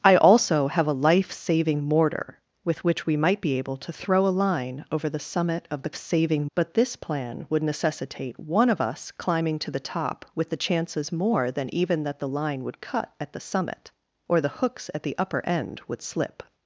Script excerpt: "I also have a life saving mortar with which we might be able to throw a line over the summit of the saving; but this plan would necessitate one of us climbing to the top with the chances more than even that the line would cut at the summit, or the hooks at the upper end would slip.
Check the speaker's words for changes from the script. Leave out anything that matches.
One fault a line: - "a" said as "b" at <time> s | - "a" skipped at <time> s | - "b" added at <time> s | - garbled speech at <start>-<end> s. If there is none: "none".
none